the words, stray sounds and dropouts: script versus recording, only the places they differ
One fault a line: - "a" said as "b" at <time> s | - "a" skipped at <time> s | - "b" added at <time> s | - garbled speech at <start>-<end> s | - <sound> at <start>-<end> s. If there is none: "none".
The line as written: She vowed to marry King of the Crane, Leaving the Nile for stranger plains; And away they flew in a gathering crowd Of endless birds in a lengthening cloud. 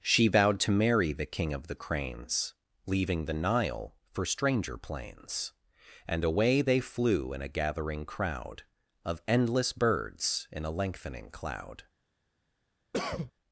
- "the" added at 1.1 s
- "Crane" said as "Cranes" at 1.8 s
- cough at 12.9-13.3 s